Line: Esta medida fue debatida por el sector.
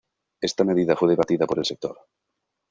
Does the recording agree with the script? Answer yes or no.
yes